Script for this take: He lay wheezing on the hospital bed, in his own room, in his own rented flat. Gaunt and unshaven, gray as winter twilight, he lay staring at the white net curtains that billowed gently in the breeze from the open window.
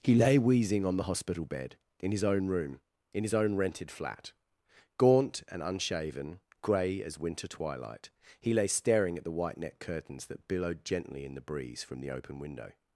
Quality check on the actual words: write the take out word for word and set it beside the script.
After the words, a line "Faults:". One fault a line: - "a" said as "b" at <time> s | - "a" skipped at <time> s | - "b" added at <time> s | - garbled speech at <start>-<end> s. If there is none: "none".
He lay wheezing on the hospital bed, in his own room, in his own rented flat. Gaunt and unshaven, gray as winter twilight, he lay staring at the white net curtains that billowed gently in the breeze from the open window.
Faults:
none